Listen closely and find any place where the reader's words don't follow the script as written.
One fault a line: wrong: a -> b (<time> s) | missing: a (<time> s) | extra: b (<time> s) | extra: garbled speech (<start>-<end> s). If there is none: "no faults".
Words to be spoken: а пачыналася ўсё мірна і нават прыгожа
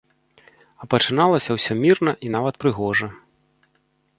no faults